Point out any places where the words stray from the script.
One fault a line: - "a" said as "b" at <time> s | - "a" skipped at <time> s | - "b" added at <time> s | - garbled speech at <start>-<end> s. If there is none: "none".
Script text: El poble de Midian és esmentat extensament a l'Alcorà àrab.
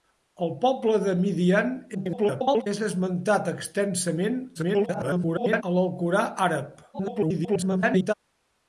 - garbled speech at 1.9-2.7 s
- garbled speech at 4.5-5.6 s
- garbled speech at 6.9-8.1 s